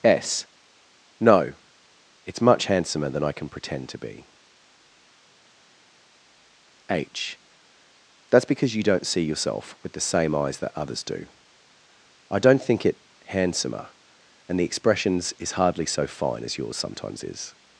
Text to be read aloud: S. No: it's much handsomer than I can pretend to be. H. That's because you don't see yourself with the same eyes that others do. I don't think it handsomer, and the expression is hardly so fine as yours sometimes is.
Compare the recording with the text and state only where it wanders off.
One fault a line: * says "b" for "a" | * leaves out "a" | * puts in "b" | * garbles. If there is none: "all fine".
* says "expressions" for "expression"